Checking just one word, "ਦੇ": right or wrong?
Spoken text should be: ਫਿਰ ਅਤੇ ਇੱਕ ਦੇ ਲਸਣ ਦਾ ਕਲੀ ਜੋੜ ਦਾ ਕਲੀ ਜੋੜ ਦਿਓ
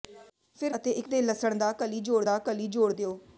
right